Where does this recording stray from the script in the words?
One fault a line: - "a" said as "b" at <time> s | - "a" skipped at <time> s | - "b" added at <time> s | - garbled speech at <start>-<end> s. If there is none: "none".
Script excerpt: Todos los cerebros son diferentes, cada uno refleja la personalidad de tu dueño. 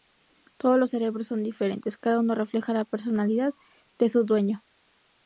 - "tu" said as "su" at 4.1 s